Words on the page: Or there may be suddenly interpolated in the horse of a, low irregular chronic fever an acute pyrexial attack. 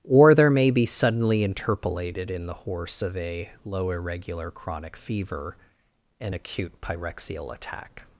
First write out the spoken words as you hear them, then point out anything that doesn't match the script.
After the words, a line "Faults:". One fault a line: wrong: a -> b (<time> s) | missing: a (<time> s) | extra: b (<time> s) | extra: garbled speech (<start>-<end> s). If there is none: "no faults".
Or there may be suddenly interpolated in the horse of a, low irregular chronic fever an acute pyrexial attack.
Faults:
no faults